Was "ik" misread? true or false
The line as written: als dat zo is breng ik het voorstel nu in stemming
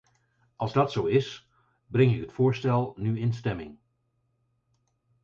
false